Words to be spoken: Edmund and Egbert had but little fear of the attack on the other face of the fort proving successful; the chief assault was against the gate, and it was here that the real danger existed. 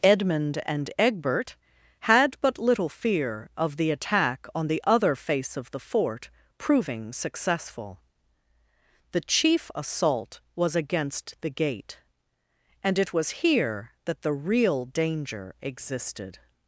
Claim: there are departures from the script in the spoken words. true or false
false